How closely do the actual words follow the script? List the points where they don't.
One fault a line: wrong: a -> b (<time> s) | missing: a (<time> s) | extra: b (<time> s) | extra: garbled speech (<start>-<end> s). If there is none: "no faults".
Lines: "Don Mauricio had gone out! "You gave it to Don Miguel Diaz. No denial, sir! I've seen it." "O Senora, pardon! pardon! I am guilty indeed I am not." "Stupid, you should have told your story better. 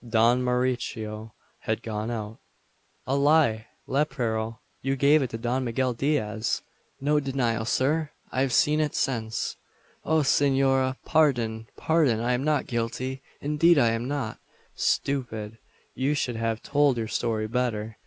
extra: A lie lepero (3.1 s)
extra: since (8.9 s)
extra: not (12.4 s)